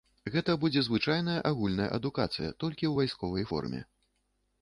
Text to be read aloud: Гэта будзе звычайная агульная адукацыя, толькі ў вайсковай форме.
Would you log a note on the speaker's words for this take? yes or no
no